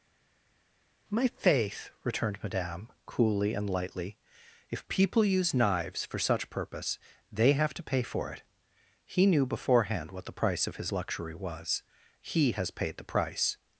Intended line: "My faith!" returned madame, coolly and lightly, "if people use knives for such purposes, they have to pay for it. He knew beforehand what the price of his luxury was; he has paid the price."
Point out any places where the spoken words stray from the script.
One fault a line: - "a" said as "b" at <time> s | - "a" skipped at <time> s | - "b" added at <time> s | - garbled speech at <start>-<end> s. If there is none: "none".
- "purposes" said as "purpose" at 6.5 s